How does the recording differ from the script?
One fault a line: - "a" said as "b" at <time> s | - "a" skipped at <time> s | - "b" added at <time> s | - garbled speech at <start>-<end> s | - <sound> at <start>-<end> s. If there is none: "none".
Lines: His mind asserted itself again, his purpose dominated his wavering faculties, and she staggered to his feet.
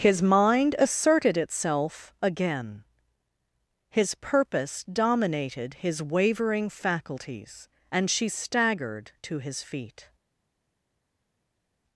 none